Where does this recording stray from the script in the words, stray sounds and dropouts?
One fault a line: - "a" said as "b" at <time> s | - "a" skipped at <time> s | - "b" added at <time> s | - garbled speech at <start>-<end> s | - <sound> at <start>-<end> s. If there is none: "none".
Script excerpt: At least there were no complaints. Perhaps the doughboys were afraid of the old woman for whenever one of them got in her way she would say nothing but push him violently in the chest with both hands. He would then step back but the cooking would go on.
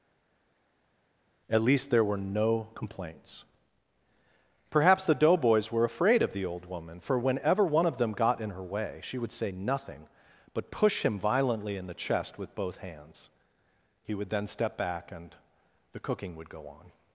- "but" said as "and" at 15.1 s